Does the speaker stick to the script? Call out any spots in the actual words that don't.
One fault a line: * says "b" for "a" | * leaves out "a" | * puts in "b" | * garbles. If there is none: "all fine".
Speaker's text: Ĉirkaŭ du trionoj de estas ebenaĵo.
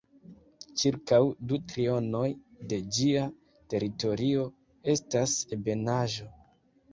* puts in "ĝia teritorio"